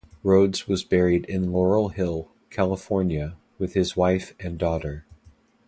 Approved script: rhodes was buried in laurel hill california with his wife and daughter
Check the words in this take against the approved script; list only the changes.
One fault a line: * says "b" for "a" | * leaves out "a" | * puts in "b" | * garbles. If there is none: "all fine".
all fine